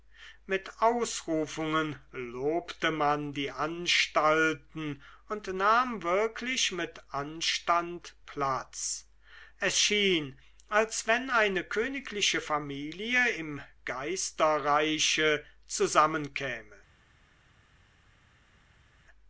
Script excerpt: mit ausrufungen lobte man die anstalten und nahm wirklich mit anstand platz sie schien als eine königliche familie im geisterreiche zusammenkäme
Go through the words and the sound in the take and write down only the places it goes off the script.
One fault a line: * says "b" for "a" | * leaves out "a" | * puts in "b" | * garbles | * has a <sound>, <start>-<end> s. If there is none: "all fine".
* says "es" for "sie"
* puts in "wenn"